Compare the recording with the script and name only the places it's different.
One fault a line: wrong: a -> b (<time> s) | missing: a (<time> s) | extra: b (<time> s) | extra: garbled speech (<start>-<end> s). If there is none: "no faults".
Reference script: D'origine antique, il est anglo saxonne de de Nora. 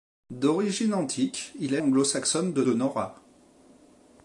no faults